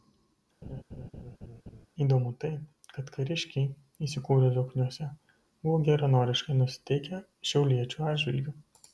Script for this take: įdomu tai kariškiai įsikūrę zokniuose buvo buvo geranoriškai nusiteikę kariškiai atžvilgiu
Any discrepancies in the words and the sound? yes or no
yes